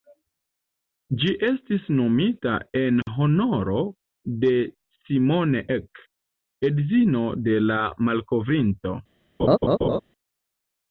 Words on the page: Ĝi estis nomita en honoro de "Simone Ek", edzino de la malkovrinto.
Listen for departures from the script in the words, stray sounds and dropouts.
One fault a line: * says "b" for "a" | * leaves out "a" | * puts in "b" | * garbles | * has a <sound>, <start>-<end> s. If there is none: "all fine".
* has a laugh, 9.4-10.0 s